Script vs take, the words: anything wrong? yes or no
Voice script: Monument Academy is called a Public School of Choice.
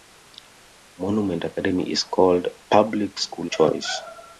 yes